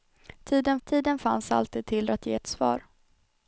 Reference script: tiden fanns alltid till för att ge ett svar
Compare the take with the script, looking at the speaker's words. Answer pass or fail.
fail